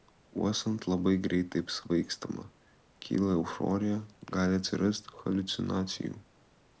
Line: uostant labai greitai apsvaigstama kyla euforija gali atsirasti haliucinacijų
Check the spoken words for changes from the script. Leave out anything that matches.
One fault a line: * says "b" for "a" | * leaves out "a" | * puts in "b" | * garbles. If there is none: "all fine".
all fine